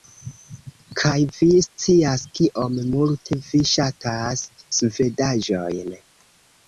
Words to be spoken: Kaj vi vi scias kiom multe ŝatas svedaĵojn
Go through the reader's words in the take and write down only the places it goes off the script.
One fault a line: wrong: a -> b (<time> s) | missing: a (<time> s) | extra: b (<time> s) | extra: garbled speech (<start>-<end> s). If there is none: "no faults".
missing: vi (1.5 s)
extra: vi (3.5 s)